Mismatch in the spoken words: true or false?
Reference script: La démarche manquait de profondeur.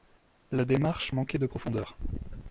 false